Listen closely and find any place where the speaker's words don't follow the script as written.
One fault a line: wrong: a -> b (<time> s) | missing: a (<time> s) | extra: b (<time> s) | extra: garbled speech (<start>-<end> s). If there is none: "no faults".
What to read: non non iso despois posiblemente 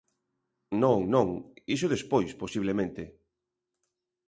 no faults